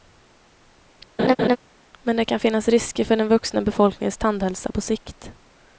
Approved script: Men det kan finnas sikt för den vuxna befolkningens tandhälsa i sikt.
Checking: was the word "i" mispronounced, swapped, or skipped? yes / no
yes